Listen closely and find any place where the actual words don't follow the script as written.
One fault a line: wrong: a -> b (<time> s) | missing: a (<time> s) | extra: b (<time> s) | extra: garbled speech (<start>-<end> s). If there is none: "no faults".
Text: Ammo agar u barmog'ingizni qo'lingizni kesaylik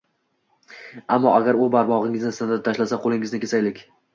extra: sindirib tashlasa (2.4 s)